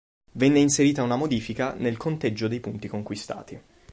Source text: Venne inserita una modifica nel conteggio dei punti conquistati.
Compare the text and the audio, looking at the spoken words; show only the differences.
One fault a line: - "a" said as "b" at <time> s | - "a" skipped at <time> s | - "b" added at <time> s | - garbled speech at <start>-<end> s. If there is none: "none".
none